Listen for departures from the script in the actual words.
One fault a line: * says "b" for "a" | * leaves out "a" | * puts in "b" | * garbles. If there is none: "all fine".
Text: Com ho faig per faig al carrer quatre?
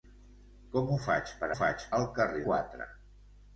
all fine